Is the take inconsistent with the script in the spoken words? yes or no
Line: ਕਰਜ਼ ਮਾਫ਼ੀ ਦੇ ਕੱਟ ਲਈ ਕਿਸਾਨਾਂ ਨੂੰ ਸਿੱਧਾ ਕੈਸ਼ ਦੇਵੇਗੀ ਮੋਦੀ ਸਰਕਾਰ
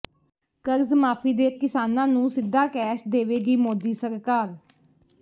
yes